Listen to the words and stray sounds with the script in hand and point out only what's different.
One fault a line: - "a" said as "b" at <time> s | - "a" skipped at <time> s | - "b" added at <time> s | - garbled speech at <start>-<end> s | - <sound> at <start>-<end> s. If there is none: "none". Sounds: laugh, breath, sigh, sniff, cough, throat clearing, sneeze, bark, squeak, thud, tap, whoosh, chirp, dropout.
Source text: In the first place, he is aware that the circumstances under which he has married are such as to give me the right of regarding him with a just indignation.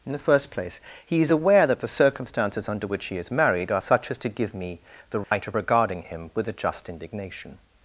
- "has" said as "is" at 3.2 s
- dropout at 5.2-5.3 s